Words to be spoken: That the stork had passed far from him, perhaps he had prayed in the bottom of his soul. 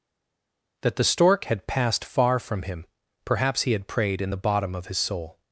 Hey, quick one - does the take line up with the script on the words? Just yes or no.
yes